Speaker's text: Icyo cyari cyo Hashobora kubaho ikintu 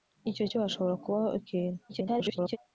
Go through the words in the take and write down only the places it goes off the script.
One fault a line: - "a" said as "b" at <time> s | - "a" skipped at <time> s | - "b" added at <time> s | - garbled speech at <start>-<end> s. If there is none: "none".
- "cyari" skipped at 0.5 s
- garbled speech at 1.9-2.6 s